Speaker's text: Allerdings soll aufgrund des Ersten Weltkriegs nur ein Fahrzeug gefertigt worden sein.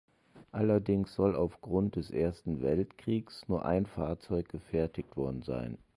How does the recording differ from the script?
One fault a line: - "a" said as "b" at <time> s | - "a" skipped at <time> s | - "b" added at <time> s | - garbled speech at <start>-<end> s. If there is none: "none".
none